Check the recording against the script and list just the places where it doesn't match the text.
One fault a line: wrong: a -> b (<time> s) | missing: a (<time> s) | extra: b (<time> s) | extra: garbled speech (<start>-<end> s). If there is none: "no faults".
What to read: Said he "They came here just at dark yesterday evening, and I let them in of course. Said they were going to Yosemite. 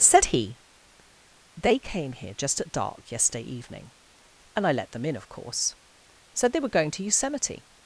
no faults